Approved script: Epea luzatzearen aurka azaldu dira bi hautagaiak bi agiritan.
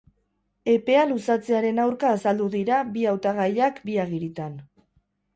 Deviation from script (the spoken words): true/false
false